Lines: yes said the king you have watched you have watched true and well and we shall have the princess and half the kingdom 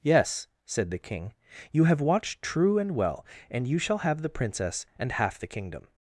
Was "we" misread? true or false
true